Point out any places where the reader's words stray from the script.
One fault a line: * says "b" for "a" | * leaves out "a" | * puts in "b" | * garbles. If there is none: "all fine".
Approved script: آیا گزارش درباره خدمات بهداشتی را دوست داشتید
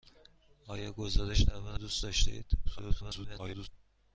* leaves out "خدمات بهداشتی را"
* garbles